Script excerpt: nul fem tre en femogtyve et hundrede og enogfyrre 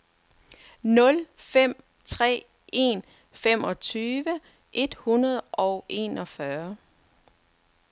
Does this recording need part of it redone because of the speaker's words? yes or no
no